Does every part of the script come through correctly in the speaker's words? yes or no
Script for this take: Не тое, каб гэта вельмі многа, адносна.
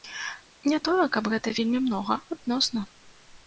yes